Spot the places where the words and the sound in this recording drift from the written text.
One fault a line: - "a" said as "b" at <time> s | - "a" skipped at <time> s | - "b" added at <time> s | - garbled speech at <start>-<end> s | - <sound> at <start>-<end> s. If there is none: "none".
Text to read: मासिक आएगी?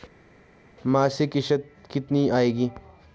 - "किश्त कितनी" added at 1.3 s